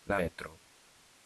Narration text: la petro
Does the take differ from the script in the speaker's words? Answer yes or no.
no